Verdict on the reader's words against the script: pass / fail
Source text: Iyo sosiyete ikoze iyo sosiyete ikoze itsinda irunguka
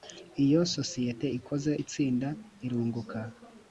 fail